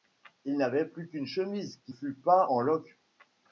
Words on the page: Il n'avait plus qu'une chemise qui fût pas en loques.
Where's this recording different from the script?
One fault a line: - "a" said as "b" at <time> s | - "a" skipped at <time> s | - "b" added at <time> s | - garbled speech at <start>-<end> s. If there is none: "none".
none